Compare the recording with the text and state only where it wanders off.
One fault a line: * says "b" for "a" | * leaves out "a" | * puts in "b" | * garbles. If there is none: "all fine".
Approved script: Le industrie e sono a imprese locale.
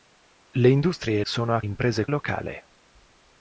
all fine